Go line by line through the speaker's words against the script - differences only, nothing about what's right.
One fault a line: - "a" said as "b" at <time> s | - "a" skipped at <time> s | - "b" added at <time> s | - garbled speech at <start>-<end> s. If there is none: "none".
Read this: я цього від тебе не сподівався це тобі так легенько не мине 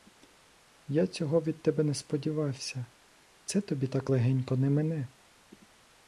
none